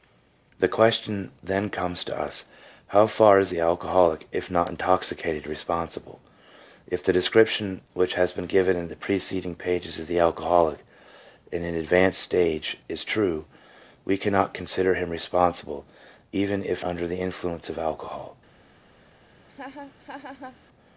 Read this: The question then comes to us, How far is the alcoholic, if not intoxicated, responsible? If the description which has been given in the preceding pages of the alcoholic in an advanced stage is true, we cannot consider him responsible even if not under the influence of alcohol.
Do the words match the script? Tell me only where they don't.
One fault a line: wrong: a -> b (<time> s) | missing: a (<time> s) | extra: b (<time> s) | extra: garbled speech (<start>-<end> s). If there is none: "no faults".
missing: not (16.8 s)